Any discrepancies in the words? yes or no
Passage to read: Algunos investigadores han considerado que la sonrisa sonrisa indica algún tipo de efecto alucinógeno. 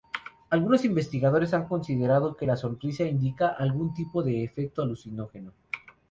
yes